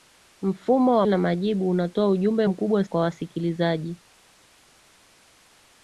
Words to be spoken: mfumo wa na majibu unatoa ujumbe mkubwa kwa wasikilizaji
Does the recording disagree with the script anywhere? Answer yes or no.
no